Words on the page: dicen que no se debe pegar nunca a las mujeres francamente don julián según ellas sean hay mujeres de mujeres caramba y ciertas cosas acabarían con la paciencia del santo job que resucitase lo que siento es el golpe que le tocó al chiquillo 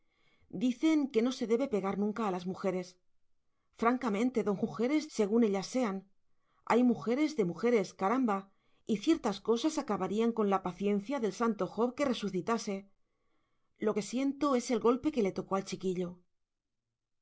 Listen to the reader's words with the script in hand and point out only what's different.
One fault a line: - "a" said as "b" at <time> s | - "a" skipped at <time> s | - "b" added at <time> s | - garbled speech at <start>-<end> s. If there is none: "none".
- "julián" said as "mujeres" at 4.6 s